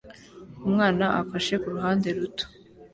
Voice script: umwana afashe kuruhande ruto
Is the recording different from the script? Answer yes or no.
no